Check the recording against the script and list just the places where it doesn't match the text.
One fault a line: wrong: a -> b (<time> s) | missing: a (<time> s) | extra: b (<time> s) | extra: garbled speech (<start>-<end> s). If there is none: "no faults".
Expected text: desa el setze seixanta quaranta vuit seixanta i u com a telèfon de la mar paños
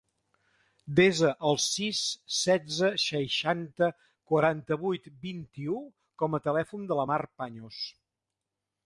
extra: sis (1.6 s)
wrong: seixanta -> vint (5.3 s)